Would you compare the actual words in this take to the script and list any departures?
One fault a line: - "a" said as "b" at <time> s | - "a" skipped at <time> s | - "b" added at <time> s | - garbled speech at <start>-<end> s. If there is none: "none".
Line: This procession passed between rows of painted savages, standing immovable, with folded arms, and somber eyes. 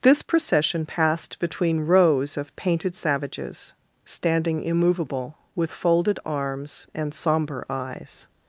none